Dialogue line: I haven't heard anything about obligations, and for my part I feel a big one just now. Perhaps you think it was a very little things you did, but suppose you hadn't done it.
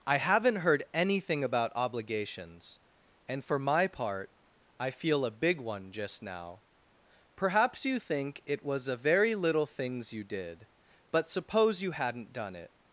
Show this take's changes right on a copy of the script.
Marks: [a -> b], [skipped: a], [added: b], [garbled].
I haven't heard anything about obligations, and for my part I feel a big one just now. Perhaps you think it was a very little things you did, but suppose you hadn't done it.